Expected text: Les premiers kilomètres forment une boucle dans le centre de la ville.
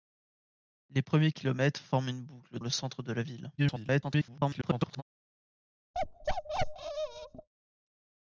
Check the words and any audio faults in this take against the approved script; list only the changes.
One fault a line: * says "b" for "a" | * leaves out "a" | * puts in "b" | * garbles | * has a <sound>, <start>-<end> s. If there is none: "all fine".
* leaves out "dans"
* garbles
* has a bark, 5.9-7.5 s